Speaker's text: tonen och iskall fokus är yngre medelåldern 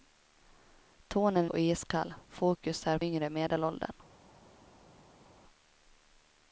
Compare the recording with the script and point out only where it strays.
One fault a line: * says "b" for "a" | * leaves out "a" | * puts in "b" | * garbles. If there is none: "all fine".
all fine